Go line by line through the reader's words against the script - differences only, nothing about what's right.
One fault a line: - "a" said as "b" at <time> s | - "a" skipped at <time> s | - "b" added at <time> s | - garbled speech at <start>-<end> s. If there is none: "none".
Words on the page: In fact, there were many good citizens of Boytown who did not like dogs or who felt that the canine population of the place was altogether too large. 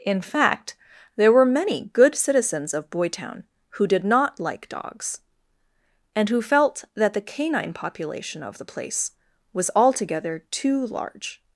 - "or" said as "and" at 6.2 s